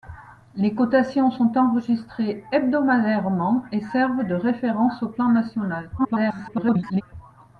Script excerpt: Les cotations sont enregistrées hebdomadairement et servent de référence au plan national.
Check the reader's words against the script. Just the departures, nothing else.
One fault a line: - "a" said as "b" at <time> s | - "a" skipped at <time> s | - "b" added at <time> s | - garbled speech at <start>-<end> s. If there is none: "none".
- garbled speech at 6.0-7.0 s